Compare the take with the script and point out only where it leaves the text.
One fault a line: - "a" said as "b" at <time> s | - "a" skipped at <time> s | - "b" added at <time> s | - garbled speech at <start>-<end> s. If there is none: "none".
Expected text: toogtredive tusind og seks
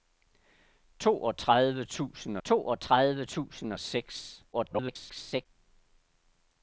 - "toogtredive tusind" added at 2.4 s
- garbled speech at 4.5-5.5 s